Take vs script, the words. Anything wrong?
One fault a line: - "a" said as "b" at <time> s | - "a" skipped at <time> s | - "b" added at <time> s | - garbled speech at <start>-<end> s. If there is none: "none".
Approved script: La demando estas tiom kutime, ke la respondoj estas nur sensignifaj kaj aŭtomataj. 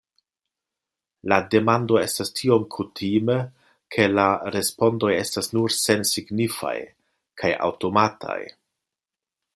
none